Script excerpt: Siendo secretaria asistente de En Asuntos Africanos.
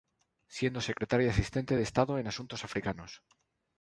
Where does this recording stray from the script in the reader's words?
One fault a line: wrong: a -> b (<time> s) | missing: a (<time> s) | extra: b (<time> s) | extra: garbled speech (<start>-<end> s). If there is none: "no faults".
extra: Estado (1.8 s)